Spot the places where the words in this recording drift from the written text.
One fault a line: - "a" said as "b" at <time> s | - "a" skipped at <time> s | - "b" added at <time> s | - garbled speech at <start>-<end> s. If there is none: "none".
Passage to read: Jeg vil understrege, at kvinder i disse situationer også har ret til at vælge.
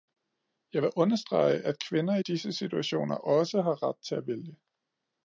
none